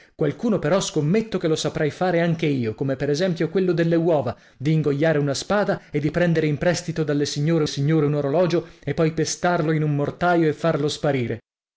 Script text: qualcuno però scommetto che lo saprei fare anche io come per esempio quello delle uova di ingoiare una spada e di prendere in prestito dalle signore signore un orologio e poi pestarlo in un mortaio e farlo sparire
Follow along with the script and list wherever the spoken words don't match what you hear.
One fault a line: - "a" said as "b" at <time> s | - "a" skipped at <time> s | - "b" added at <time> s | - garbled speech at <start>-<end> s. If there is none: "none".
none